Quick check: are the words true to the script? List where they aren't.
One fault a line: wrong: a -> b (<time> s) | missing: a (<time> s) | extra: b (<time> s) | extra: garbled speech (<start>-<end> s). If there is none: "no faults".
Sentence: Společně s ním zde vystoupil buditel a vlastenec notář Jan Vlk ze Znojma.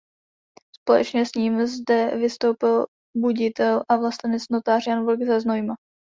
no faults